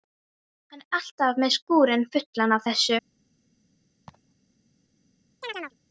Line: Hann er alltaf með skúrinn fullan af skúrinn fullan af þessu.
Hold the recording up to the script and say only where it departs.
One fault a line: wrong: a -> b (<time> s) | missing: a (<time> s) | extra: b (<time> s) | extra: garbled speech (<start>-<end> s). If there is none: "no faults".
missing: skúrinn fullan af (2.7 s)